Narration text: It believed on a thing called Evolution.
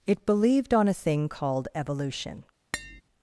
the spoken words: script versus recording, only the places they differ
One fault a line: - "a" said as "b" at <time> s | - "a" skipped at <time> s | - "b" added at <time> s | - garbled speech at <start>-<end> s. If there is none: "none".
none